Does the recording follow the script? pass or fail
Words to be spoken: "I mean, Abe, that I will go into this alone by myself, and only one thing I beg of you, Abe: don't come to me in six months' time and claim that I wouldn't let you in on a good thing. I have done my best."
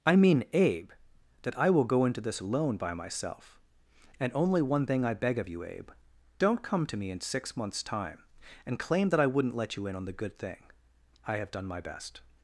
fail